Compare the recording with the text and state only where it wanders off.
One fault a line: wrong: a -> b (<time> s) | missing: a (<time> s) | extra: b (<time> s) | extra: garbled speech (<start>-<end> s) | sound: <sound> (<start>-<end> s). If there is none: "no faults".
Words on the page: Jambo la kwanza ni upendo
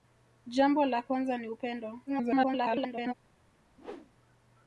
extra: garbled speech (2.1-3.1 s)
sound: whoosh (3.8-4.1 s)